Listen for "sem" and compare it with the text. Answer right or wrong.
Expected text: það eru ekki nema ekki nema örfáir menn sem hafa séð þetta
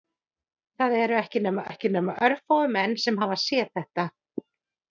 right